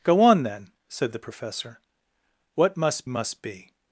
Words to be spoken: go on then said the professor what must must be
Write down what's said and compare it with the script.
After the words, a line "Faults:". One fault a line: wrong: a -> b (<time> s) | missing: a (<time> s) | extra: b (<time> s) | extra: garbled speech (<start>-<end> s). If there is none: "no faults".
go on then said the professor what must must be
Faults:
no faults